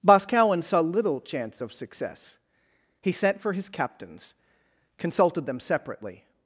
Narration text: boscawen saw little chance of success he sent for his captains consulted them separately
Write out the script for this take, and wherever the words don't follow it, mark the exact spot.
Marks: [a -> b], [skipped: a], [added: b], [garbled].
boscawen saw little chance of success he sent for his captains consulted them separately